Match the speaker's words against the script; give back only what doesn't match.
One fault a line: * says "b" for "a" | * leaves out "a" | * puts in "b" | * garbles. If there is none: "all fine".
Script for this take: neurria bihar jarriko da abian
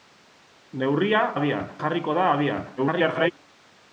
* says "abian" for "bihar"
* garbles